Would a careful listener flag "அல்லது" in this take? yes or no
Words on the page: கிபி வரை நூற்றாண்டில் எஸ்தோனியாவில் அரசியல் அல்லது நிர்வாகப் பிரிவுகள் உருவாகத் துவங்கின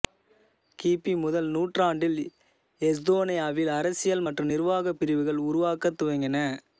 yes